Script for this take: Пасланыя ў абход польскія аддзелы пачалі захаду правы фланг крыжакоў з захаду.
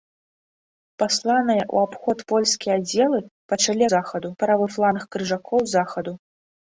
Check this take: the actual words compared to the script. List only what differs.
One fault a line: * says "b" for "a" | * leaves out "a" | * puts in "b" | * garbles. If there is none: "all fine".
all fine